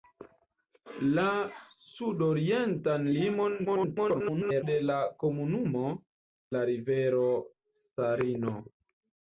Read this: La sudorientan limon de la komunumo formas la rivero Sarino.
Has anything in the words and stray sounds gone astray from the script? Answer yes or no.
yes